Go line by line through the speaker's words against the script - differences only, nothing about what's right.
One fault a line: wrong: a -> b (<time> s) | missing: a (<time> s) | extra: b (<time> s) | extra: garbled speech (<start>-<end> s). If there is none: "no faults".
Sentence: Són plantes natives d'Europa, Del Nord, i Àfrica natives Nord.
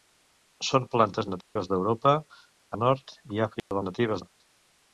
no faults